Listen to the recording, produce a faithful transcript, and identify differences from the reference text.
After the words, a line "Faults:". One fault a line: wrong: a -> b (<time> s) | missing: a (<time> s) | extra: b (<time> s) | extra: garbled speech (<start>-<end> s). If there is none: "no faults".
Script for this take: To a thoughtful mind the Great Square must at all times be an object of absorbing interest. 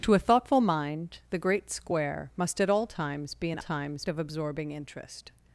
To a thoughtful mind the Great Square must at all times be an times of absorbing interest.
Faults:
wrong: object -> times (3.6 s)